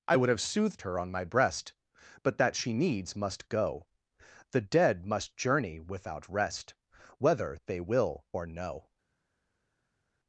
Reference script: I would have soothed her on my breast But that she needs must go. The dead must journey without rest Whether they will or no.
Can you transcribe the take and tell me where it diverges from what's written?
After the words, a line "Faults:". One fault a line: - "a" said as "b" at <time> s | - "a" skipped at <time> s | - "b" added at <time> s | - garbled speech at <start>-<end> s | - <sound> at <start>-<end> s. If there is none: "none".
I would have soothed her on my breast But that she needs must go. The dead must journey without rest Whether they will or no.
Faults:
none